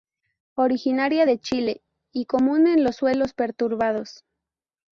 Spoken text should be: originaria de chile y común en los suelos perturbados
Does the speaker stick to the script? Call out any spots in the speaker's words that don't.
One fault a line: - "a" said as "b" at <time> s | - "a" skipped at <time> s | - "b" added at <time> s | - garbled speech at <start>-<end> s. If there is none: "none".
none